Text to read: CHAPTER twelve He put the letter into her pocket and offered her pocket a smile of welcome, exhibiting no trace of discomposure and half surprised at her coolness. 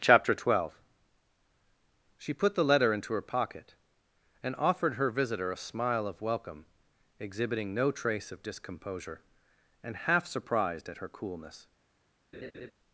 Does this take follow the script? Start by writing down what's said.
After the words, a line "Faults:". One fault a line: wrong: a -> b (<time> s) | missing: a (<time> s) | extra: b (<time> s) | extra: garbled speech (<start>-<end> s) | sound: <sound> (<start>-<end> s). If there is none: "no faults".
CHAPTER twelve She put the letter into her pocket and offered her visitor a smile of welcome, exhibiting no trace of discomposure and half surprised at her coolness.
Faults:
wrong: He -> She (2.2 s)
wrong: pocket -> visitor (5.1 s)
sound: laugh (12.3-12.7 s)